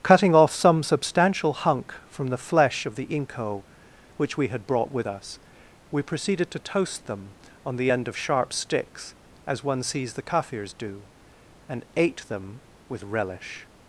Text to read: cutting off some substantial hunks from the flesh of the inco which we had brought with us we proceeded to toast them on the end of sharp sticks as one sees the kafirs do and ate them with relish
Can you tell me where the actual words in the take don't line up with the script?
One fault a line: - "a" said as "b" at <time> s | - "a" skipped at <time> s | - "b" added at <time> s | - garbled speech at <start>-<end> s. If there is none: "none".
- "hunks" said as "hunk" at 1.5 s